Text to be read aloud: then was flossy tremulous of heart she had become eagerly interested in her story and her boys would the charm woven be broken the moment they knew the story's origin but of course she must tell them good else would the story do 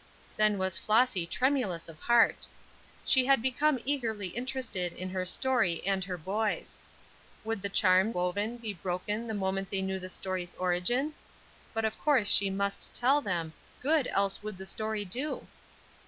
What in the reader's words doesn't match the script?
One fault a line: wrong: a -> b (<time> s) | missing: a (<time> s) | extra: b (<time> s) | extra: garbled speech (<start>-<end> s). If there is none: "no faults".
no faults